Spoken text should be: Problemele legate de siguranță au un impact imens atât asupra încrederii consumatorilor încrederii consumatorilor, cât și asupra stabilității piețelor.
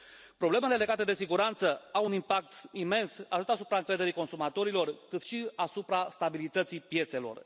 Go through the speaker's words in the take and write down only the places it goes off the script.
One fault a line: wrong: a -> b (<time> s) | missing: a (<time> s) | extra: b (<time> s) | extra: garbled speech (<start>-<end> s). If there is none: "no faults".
missing: încrederii consumatorilor (4.9 s)